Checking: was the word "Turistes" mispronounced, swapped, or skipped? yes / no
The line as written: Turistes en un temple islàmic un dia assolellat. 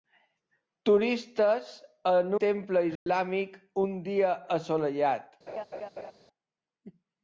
no